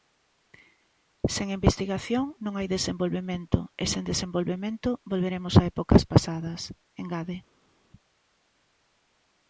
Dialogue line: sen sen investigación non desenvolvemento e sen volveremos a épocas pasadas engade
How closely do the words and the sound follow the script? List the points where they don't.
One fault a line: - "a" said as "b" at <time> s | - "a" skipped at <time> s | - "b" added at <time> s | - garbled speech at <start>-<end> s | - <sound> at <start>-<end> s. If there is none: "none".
- "sen" skipped at 1.5 s
- "hai" added at 2.6 s
- "desenvolvemento" added at 4.1 s